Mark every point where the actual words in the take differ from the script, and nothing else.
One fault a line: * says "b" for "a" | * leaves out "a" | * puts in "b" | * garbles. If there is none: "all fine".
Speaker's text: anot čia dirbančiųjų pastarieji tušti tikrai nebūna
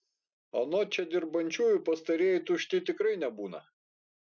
all fine